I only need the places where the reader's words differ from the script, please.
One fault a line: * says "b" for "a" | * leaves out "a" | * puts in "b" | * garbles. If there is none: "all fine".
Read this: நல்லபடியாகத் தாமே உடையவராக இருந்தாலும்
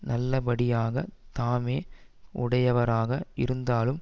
all fine